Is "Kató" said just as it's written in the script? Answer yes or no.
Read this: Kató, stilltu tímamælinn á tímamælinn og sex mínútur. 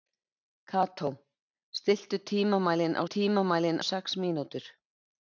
yes